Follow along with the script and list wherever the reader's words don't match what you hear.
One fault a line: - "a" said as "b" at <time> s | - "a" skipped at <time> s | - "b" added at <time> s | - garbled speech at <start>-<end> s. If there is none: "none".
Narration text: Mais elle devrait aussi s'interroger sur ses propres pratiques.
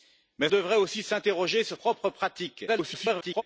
- "elle" skipped at 0.5 s
- "ses" skipped at 1.8 s
- garbled speech at 2.7-3.4 s